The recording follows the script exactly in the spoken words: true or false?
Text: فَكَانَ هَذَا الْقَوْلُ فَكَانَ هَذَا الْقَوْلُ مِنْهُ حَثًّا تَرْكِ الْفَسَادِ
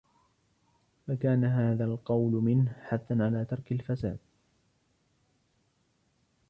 false